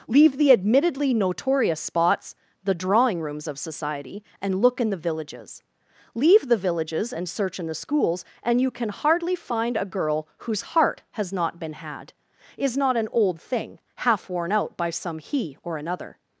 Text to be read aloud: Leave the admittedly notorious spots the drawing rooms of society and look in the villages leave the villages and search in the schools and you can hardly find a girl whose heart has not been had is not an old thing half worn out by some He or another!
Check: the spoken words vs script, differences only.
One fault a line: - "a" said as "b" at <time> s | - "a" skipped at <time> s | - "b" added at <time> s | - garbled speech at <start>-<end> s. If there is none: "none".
none